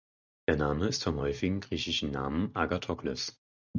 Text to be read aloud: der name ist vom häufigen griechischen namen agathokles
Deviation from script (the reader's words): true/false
false